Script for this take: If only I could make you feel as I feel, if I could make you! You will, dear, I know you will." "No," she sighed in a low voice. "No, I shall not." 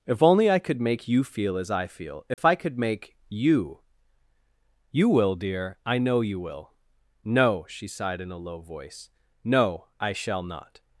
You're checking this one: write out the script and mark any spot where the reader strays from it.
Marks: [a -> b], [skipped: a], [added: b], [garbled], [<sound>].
If only I could make you feel as I feel, if [dropout] I could make you! You will, dear, I know you will." "No," she sighed in a low voice. "No, I shall not."